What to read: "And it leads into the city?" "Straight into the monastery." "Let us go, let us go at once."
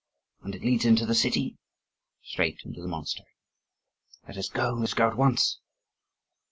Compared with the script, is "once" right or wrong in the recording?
right